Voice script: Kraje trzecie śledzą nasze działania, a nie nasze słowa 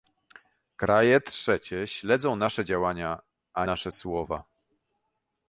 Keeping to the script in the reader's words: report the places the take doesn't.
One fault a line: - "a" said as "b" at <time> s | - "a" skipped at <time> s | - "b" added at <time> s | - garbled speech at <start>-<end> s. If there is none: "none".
- "nie" skipped at 3.7 s